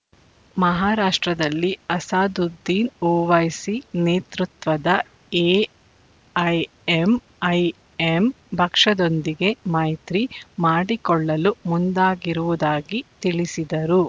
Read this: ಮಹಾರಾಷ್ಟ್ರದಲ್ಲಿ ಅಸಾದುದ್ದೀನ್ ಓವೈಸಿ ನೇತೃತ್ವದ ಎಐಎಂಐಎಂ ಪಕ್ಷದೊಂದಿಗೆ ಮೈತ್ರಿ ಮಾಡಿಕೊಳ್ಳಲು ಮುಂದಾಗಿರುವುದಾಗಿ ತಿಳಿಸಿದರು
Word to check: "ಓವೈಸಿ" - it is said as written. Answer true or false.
true